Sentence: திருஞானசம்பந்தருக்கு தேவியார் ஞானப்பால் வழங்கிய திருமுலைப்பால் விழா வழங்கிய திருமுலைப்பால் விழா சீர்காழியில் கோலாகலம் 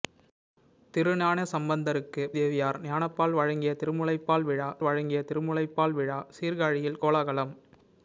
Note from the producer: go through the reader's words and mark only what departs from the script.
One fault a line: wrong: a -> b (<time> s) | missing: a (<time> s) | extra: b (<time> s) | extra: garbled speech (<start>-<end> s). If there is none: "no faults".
no faults